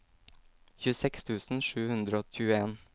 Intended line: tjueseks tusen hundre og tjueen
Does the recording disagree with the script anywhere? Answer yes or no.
yes